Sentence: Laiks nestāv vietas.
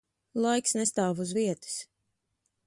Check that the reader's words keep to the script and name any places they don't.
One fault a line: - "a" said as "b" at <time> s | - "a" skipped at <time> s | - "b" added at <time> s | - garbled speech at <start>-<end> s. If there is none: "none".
- "uz" added at 1.2 s